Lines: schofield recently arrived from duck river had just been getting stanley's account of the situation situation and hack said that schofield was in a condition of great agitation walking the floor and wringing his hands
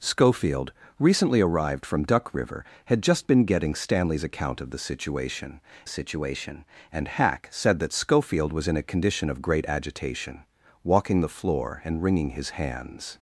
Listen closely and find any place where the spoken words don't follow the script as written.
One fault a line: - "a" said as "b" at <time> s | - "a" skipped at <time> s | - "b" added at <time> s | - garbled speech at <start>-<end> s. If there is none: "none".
none